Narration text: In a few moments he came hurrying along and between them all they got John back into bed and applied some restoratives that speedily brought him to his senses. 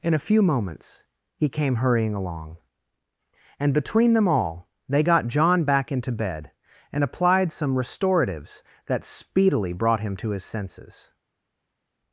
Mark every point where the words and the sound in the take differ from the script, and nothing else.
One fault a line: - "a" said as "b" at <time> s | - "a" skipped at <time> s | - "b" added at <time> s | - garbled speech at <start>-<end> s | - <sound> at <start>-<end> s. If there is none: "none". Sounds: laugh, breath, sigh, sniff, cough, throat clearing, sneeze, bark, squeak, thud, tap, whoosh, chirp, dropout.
none